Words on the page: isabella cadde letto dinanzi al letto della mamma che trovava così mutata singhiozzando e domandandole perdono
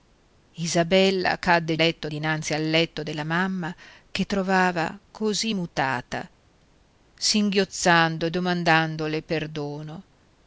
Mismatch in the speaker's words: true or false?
false